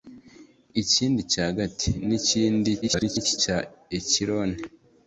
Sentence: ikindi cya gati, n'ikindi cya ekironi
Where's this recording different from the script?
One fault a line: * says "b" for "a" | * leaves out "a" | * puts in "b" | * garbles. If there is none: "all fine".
* garbles